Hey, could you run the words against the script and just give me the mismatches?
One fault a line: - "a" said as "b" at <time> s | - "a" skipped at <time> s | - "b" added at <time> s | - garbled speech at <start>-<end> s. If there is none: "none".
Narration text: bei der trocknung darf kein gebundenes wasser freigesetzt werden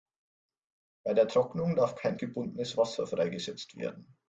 none